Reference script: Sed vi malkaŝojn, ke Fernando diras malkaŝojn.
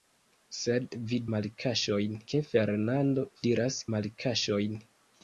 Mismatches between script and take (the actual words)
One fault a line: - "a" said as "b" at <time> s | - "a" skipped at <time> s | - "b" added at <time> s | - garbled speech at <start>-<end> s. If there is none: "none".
none